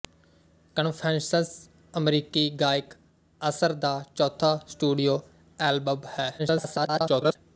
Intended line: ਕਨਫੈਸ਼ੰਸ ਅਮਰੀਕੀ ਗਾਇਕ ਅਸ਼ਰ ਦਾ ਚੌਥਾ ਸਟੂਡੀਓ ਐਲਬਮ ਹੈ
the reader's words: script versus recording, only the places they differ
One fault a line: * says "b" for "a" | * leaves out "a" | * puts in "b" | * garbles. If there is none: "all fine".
* garbles